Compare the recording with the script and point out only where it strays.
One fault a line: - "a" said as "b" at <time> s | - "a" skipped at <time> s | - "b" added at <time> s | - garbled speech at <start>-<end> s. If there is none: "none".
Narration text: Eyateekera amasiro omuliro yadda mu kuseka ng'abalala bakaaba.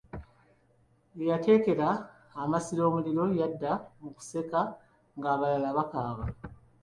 none